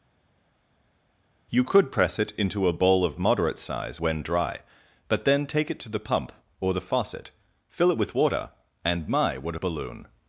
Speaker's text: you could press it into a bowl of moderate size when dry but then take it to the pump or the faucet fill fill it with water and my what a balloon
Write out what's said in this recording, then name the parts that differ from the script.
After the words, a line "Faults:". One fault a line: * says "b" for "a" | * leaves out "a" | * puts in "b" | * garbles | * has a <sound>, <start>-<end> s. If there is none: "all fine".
you could press it into a bowl of moderate size when dry but then take it to the pump or the faucet fill it with water and my what a balloon
Faults:
* leaves out "fill"